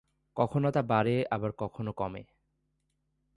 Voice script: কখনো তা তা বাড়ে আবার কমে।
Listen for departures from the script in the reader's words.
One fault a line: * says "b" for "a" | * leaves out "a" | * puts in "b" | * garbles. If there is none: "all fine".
* leaves out "তা"
* puts in "কখনো"